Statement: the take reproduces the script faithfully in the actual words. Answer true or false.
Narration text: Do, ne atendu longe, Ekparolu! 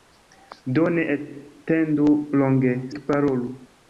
true